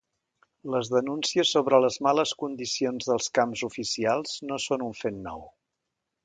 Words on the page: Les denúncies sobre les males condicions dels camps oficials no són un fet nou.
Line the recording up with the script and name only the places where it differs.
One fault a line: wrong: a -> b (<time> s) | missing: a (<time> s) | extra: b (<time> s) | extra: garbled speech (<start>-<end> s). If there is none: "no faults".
no faults